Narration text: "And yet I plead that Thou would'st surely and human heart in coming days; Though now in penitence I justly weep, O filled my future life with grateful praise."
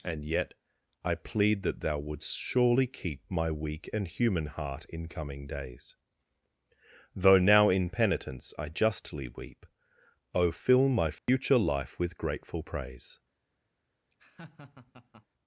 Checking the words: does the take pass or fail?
fail